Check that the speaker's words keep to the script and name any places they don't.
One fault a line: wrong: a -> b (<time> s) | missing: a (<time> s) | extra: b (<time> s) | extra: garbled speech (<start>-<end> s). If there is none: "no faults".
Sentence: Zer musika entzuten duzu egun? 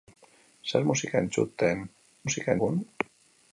wrong: duzu -> musika (2.3 s)